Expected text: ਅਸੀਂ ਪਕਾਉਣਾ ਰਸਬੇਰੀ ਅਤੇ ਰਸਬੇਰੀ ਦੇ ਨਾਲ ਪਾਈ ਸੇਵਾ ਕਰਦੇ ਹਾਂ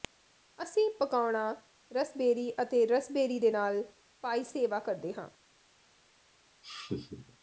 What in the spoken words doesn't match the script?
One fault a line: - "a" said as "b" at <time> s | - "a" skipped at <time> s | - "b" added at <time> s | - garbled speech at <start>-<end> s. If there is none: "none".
none